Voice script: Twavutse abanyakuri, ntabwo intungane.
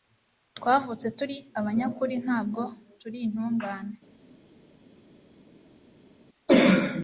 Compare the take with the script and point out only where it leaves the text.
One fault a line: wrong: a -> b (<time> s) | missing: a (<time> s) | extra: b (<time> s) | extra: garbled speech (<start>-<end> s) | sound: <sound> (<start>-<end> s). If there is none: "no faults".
extra: turi (1.2 s)
extra: turi (3.0 s)